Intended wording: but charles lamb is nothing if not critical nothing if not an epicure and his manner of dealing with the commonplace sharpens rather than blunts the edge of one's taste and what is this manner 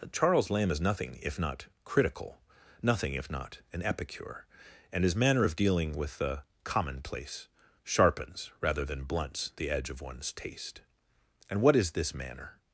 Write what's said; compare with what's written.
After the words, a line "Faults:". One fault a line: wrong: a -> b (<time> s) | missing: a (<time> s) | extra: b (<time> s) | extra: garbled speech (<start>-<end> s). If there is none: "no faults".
charles lamb is nothing if not critical nothing if not an epicure and his manner of dealing with the commonplace sharpens rather than blunts the edge of one's taste and what is this manner
Faults:
missing: but (0.1 s)